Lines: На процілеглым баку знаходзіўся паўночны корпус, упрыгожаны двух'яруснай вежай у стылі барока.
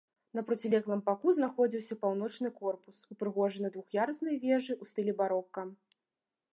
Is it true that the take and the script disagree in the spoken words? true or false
false